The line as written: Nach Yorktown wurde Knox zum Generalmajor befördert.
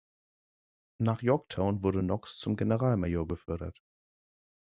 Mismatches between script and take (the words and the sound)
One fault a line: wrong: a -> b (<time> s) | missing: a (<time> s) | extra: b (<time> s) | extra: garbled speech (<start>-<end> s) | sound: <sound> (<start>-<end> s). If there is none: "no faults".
no faults